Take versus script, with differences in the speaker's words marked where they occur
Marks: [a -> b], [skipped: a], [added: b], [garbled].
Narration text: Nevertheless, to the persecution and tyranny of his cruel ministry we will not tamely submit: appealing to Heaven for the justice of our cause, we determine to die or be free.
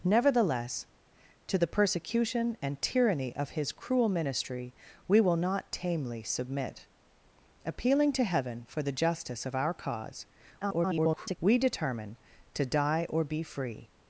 Nevertheless, to the persecution and tyranny of his cruel ministry we will not tamely submit: appealing to Heaven for the justice of our cause, [garbled] we determine to die or be free.